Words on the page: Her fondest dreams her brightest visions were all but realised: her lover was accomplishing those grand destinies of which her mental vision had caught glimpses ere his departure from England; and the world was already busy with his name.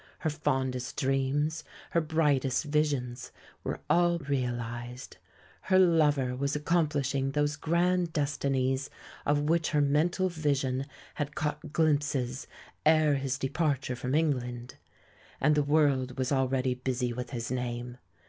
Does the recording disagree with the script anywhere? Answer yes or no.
yes